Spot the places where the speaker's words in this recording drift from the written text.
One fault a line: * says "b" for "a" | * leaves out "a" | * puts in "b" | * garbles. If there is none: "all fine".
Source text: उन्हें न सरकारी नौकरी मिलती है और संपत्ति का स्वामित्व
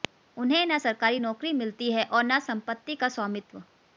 * puts in "न"